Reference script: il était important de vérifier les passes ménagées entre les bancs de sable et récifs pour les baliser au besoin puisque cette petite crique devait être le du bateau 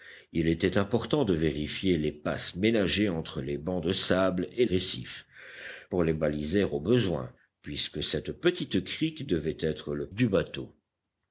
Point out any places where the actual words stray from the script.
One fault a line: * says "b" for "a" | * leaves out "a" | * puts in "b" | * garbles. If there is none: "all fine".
all fine